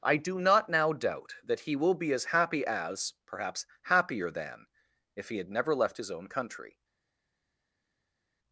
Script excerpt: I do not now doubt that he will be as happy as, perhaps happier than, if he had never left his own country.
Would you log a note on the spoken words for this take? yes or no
no